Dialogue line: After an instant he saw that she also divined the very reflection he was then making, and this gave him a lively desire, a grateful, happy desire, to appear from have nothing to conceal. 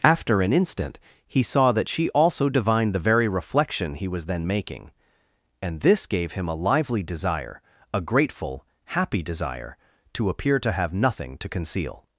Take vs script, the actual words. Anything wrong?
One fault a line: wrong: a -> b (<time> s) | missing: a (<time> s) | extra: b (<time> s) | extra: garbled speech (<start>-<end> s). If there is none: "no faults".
wrong: from -> to (10.6 s)